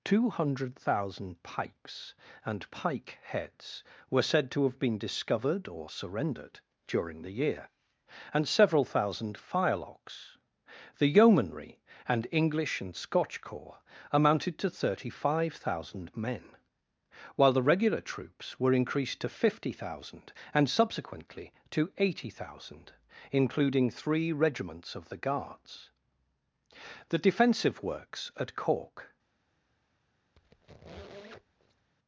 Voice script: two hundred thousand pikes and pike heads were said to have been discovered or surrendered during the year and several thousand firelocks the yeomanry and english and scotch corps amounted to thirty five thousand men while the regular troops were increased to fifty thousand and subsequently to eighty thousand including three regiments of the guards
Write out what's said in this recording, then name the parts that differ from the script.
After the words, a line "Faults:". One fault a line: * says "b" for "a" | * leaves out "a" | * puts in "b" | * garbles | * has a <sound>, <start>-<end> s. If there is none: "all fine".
two hundred thousand pikes and pike heads were said to have been discovered or surrendered during the year and several thousand firelocks the yeomanry and english and scotch corps amounted to thirty five thousand men while the regular troops were increased to fifty thousand and subsequently to eighty thousand including three regiments of the guards the defensive works at cork
Faults:
* puts in "the defensive works at cork"
* has a squeak, 30.4-31.9 s